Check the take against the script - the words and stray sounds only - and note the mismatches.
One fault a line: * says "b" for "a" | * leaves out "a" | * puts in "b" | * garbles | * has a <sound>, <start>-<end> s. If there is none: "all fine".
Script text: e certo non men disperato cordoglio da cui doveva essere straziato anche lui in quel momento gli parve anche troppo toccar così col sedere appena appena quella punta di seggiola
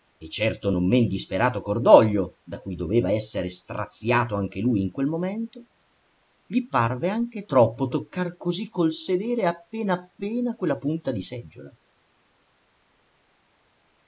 all fine